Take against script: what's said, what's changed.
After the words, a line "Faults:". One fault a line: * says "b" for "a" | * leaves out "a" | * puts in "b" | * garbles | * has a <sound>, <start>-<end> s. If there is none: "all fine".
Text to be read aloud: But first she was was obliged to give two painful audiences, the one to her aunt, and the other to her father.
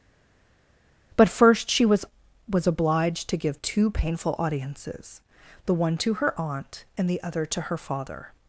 But first she was was obliged to give two painful audiences, the one to her aunt, and the other to her father.
Faults:
all fine